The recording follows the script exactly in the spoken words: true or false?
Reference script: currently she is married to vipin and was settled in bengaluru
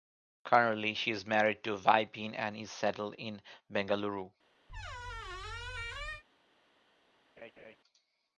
false